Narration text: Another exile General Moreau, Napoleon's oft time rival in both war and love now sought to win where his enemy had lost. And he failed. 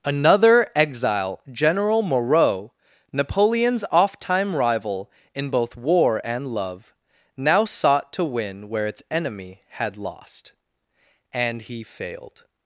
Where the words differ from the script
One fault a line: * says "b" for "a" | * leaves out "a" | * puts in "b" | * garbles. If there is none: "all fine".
* says "its" for "his"